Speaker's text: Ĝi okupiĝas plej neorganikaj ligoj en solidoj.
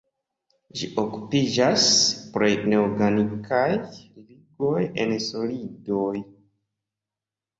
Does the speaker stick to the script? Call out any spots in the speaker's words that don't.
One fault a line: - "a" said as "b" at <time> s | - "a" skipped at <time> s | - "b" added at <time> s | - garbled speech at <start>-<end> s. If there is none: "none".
none